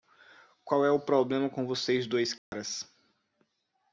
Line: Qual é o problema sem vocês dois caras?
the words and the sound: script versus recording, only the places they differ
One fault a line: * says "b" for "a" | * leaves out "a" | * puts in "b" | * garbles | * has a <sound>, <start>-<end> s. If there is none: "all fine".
* says "com" for "sem"
* has a dropout, 2.4-2.5 s